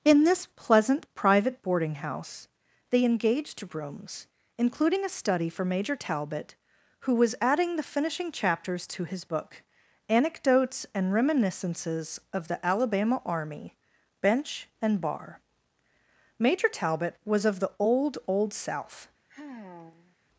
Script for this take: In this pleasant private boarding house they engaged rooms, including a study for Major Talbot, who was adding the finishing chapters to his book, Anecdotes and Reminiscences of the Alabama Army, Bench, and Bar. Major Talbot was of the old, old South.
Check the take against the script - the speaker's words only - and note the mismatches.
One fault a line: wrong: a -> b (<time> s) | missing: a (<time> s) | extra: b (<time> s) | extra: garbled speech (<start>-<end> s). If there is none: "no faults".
no faults